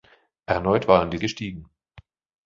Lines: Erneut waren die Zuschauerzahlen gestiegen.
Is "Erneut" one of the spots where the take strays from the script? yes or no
no